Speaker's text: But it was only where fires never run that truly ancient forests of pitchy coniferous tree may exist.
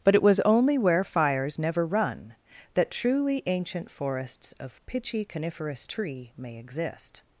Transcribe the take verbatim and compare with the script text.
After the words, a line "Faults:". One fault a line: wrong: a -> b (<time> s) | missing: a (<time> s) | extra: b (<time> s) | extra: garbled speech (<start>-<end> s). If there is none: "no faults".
But it was only where fires never run that truly ancient forests of pitchy coniferous tree may exist.
Faults:
no faults